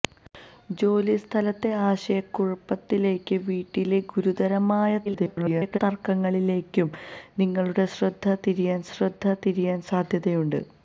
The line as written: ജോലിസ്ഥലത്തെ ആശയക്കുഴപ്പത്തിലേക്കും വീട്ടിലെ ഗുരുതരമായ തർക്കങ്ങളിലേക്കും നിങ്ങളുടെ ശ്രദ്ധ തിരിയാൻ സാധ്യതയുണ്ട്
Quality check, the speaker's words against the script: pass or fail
fail